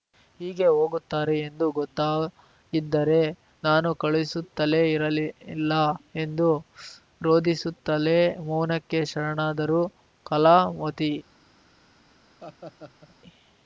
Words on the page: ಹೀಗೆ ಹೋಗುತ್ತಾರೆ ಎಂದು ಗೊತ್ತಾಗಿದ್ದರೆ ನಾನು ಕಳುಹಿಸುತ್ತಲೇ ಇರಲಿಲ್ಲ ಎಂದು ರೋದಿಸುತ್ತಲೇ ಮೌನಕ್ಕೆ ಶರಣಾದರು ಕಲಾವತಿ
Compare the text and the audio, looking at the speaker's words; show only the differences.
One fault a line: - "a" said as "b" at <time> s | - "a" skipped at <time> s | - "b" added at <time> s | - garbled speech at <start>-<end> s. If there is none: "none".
none